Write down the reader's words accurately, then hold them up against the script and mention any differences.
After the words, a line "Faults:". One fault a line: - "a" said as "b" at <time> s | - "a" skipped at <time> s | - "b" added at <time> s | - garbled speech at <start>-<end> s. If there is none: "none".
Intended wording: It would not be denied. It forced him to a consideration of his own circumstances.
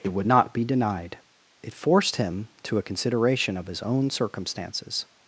It would not be denied. It forced him to a consideration of his own circumstances.
Faults:
none